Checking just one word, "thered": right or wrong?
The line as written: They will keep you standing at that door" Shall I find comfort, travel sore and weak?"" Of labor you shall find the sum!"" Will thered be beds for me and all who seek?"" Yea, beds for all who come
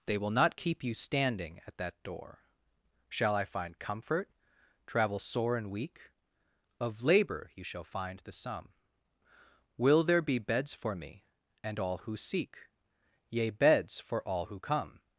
wrong